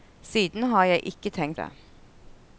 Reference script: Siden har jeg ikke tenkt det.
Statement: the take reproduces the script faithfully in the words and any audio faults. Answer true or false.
true